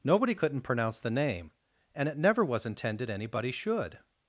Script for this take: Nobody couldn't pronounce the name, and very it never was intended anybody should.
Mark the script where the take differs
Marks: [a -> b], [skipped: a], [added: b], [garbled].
Nobody couldn't pronounce the name, and [skipped: very] it never was intended anybody should.